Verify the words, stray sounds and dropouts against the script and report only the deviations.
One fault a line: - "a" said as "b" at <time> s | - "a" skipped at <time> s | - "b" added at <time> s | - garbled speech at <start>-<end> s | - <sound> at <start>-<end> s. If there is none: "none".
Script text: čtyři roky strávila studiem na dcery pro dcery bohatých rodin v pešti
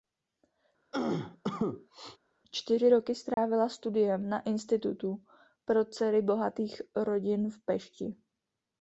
- cough at 0.9-2.2 s
- dropout at 3.3-3.4 s
- "dcery" said as "institutu" at 4.4 s